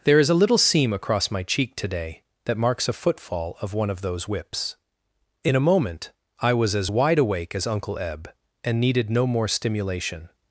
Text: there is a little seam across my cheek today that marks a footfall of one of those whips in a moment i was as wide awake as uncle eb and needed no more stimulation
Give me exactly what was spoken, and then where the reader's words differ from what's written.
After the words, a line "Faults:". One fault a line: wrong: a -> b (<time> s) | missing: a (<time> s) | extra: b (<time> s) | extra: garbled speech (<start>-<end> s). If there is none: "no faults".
there is a little seam across my cheek today that marks a footfall of one of those whips in a moment i was as wide awake as uncle eb and needed no more stimulation
Faults:
no faults